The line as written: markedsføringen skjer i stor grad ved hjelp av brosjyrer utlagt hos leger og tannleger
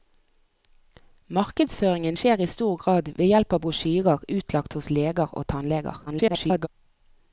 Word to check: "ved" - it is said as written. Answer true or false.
true